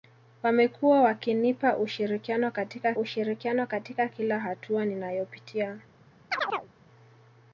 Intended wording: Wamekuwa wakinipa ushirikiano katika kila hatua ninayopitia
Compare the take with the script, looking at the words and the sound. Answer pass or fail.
fail